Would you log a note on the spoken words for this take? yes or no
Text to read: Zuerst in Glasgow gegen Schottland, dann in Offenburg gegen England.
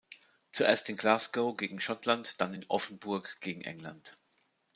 no